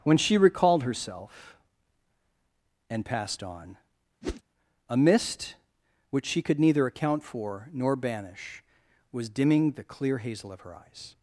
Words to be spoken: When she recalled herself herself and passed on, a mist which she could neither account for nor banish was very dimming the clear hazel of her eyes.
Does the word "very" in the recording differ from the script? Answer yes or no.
yes